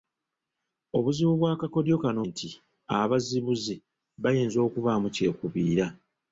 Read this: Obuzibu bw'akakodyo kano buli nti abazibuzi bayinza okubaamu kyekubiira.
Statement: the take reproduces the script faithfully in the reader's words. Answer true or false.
false